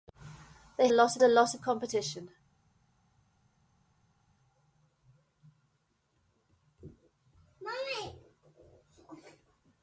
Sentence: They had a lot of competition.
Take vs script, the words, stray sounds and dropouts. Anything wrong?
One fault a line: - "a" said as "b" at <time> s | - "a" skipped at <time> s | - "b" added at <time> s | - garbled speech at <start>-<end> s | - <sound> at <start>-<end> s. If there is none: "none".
- "had" said as "lot" at 0.9 s